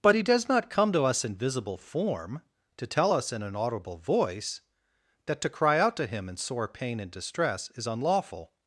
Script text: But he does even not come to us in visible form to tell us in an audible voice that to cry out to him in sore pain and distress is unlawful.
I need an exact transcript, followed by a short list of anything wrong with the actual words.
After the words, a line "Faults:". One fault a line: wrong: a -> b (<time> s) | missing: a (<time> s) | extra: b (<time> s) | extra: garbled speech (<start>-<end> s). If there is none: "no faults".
But he does not come to us in visible form to tell us in an audible voice that to cry out to him in sore pain and distress is unlawful.
Faults:
missing: even (0.5 s)